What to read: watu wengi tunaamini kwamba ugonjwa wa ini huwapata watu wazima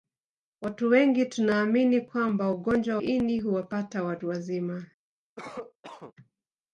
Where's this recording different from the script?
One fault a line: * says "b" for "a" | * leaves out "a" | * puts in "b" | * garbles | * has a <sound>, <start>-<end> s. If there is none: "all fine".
* leaves out "wa"
* has a cough, 5.4-6.1 s